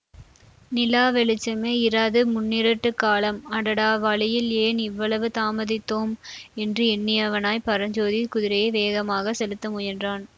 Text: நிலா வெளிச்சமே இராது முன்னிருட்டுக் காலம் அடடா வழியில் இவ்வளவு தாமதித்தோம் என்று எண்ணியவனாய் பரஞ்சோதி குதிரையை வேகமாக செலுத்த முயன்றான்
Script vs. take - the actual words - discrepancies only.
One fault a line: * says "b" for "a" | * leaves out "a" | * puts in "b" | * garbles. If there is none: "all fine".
* puts in "ஏன்"